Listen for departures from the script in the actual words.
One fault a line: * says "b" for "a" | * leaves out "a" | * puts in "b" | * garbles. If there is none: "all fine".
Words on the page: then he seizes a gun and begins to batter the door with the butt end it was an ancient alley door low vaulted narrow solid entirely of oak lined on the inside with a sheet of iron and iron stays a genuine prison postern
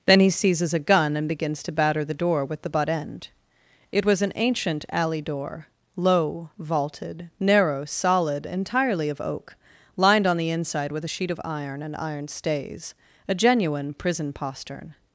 all fine